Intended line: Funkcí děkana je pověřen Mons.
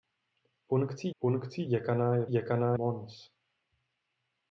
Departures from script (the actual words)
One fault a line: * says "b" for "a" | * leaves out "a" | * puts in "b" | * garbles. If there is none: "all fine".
* puts in "funkcí"
* says "děkana" for "pověřen"